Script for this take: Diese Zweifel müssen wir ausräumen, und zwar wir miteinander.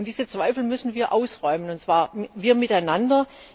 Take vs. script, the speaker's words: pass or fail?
pass